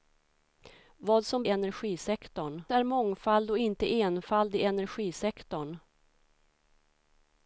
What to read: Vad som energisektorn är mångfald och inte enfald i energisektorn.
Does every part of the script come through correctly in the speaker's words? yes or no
yes